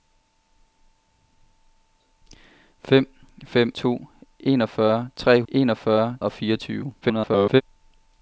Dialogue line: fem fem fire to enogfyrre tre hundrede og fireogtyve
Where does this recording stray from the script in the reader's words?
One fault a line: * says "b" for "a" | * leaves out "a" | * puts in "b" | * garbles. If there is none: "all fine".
* leaves out "fire"
* says "enogfyrre" for "hundrede"
* garbles